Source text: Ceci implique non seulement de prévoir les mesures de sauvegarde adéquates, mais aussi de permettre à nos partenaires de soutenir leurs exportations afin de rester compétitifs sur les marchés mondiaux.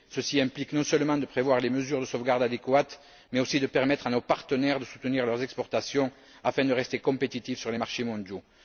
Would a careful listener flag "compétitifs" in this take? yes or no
no